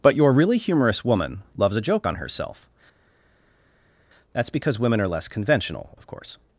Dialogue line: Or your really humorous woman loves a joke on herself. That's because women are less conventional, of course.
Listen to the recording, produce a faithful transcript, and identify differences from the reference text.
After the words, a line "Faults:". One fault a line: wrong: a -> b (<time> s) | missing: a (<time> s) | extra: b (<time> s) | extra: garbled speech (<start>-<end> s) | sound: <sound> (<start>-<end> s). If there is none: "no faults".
But your really humorous woman loves a joke on herself. That's because women are less conventional, of course.
Faults:
wrong: Or -> But (0.0 s)